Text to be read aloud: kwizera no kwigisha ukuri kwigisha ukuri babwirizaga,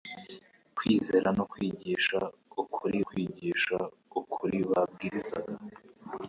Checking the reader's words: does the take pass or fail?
pass